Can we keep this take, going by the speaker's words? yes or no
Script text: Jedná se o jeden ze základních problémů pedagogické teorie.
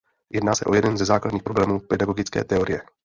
yes